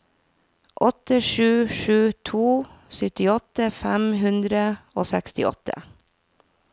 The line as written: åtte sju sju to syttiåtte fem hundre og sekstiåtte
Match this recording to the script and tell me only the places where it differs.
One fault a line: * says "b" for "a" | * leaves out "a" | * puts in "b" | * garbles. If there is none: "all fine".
all fine